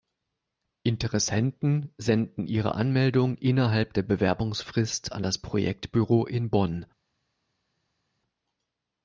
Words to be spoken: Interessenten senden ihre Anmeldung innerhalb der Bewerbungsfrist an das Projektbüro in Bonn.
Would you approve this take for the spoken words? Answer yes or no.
yes